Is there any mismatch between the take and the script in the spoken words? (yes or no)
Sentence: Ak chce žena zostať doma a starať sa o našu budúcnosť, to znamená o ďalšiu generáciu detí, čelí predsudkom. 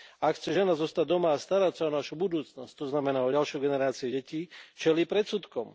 no